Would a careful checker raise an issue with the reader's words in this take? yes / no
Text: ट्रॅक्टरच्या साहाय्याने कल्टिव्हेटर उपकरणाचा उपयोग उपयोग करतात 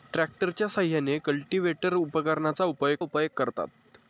no